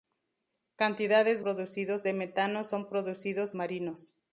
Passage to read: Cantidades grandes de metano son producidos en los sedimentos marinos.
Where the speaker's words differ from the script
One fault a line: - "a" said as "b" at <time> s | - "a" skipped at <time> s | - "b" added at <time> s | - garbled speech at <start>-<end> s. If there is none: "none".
- "grandes" said as "producidos" at 1.4 s
- "en los sedimentos" skipped at 3.5 s